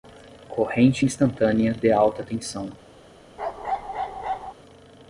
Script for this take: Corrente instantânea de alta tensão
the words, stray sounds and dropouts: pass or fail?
fail